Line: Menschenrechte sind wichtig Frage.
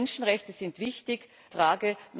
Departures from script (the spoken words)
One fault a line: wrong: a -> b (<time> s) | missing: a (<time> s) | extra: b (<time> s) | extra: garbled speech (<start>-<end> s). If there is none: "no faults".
no faults